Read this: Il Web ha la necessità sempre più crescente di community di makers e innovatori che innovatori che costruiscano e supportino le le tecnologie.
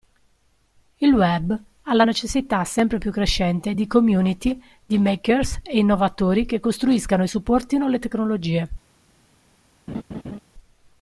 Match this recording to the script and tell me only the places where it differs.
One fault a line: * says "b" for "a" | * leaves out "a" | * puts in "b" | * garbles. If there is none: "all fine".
* leaves out "innovatori che"
* leaves out "le"